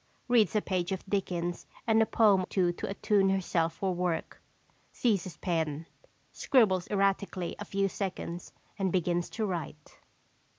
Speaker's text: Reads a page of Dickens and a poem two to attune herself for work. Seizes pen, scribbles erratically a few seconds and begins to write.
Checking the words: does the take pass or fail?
pass